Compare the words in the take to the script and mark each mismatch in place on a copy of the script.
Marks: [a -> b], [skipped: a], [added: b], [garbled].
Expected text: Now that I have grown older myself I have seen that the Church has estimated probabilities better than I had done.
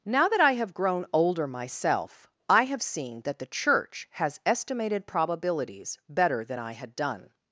Now that I have grown older myself I have seen that the Church has estimated probabilities better than I had done.